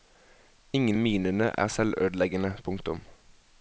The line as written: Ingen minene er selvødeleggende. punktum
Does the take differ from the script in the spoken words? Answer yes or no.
no